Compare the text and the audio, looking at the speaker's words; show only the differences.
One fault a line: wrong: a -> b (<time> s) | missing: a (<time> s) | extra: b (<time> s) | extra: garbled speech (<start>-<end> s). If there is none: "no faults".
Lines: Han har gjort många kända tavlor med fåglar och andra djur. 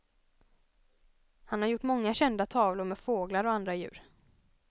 no faults